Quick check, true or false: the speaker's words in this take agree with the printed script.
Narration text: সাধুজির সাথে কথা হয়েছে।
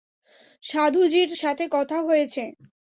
true